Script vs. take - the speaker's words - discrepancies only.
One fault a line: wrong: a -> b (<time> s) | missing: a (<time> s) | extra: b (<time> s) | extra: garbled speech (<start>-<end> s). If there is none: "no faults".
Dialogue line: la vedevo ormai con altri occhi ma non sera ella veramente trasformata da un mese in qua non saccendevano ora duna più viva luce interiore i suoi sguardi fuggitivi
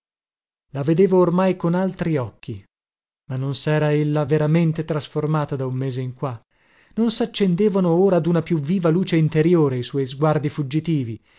no faults